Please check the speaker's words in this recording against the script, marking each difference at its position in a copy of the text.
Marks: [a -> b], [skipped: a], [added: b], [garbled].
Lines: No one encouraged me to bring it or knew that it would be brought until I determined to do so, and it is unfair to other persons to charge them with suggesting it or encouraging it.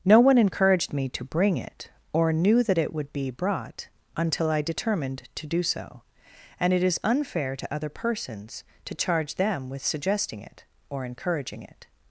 No one encouraged me to bring it or knew that it would be brought until I determined to do so, and it is unfair to other persons to charge them with suggesting it or encouraging it.